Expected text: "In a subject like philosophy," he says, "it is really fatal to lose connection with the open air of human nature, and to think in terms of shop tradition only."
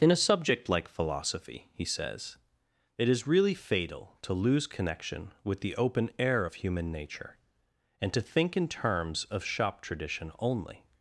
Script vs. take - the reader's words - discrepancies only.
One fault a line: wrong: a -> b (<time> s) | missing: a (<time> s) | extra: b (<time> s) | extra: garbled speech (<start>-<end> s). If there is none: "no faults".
no faults